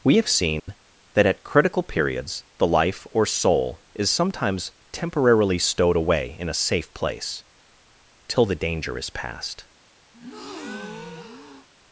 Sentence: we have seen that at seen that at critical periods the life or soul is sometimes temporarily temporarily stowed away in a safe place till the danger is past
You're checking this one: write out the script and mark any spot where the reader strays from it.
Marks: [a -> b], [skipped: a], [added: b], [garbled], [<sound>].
we have seen [dropout] that at [skipped: seen that at] critical periods the life or soul is sometimes temporarily [skipped: temporarily] stowed away in a safe place till the danger is past [breath]